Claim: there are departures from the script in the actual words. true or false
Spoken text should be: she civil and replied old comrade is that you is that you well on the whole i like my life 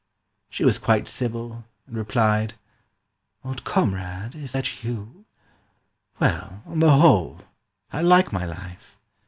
true